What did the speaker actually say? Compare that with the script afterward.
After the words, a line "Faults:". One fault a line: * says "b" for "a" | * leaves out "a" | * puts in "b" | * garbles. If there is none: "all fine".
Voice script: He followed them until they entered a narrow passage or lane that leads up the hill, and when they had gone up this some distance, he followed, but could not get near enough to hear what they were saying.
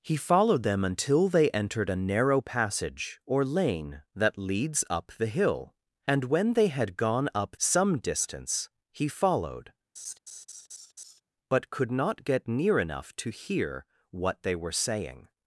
He followed them until they entered a narrow passage or lane that leads up the hill, and when they had gone up some distance, he followed, but could not get near enough to hear what they were saying.
Faults:
* leaves out "this"